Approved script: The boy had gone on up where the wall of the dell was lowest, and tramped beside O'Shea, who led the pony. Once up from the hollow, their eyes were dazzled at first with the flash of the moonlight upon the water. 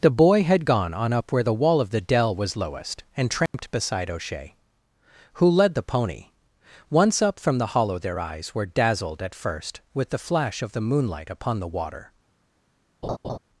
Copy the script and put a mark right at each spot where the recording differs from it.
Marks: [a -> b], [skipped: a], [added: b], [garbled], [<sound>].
The boy had gone on up where the wall of the dell was lowest, and tramped [dropout] beside O'Shea, who led the pony. Once up from the hollow, their eyes were dazzled at first with the flash of the moonlight upon the water. [laugh]